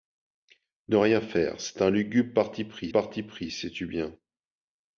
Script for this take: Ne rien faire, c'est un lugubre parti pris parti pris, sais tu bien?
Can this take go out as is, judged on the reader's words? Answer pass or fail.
pass